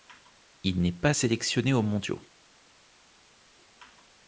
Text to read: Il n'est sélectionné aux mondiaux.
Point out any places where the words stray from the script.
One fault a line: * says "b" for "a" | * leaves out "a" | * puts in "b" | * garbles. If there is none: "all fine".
* puts in "pas"